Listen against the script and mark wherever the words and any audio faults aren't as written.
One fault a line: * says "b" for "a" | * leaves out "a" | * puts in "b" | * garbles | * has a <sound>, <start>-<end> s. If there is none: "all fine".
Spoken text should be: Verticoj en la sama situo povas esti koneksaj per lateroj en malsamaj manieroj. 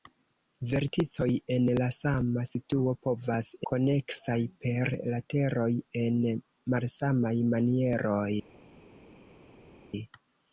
* leaves out "esti"